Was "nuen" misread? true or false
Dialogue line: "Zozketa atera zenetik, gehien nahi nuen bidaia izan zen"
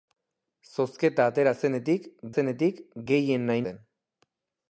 true